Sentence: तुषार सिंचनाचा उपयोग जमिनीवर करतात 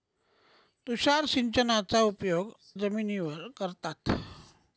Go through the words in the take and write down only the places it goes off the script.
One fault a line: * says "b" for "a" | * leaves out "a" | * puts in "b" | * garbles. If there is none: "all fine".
all fine